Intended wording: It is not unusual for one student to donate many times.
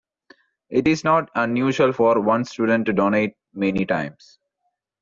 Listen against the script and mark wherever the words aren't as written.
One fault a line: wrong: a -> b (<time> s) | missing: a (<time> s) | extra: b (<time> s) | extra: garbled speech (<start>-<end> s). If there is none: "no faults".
no faults